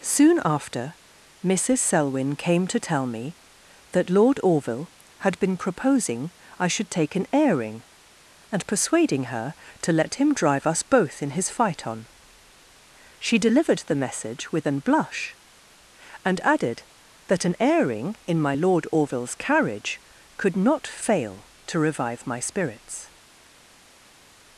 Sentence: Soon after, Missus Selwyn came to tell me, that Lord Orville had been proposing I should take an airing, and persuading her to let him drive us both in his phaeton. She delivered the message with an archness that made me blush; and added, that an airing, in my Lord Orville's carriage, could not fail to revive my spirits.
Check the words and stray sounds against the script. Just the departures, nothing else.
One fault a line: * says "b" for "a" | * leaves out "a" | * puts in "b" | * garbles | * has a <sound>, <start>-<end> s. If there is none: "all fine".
* leaves out "archness that made me"